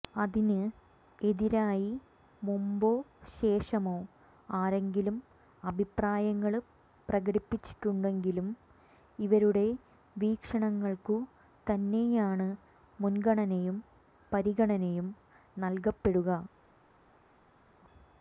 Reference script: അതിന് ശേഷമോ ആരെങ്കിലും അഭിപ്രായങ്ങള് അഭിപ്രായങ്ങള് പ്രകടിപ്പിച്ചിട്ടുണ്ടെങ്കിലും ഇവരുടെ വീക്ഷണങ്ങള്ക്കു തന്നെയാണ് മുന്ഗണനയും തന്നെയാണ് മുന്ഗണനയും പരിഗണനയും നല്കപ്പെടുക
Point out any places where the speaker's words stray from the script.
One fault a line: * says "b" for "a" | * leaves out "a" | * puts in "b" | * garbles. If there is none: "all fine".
* puts in "എതിരായി മുമ്പോ"
* leaves out "അഭിപ്രായങ്ങള്"
* leaves out "തന്നെയാണ് മുന്ഗണനയും"